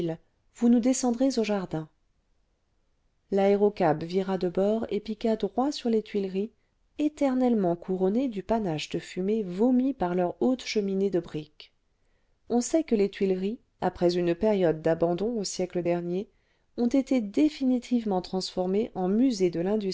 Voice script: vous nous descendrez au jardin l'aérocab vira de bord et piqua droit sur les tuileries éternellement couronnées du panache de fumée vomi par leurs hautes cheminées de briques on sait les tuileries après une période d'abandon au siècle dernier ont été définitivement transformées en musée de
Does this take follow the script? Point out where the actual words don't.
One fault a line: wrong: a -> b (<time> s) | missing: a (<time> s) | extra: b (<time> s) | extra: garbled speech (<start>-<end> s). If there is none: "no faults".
extra: que (12.8 s)